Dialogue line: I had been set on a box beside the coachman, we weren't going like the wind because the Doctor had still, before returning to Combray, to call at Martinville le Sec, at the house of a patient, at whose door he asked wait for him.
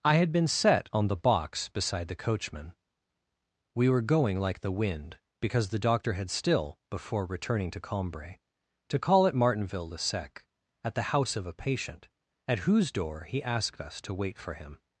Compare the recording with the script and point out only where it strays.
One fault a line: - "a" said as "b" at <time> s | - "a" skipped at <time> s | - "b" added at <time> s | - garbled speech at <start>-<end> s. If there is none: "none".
- "a" said as "the" at 1.1 s
- "weren't" said as "were" at 3.9 s
- "us to" added at 13.8 s